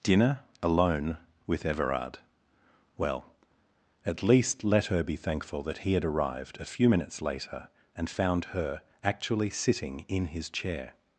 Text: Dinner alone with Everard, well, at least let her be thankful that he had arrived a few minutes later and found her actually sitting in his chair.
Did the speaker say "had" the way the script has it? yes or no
yes